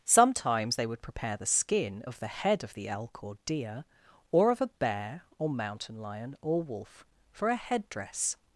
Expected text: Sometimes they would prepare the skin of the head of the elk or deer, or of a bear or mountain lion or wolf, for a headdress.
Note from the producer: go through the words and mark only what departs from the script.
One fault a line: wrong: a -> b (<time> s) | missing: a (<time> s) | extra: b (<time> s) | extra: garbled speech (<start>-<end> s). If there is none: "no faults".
no faults